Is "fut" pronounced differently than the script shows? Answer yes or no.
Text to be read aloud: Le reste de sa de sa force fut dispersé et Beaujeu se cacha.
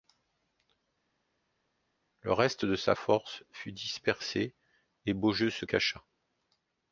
no